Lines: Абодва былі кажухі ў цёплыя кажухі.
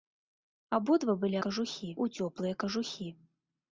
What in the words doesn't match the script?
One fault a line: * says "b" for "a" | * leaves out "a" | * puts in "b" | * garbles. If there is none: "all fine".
all fine